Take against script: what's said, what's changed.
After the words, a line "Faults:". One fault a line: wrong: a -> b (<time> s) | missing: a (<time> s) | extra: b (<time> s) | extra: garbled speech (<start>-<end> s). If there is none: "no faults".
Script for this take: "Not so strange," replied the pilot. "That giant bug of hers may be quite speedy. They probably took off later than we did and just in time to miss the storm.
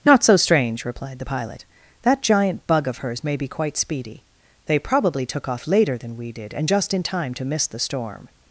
"Not so strange," replied the pilot. "That giant bug of hers may be quite speedy. They probably took off later than we did and just in time to miss the storm.
Faults:
no faults